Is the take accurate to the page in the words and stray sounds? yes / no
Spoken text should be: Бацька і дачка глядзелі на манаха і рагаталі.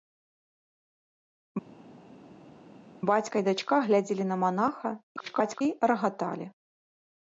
no